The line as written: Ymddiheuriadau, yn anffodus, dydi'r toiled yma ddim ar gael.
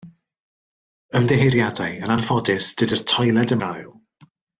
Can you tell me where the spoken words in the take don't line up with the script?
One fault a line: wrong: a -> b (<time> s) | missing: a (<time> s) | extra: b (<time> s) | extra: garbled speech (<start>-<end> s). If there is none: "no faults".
missing: yma ddim ar (3.5 s)